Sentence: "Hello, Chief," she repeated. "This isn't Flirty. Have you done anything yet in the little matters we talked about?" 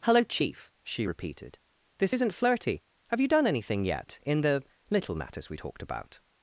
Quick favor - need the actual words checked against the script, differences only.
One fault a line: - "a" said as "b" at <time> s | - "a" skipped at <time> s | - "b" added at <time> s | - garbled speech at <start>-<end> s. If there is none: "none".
none